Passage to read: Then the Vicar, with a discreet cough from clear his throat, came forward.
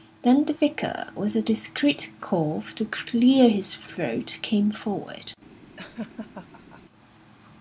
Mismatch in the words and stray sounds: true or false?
true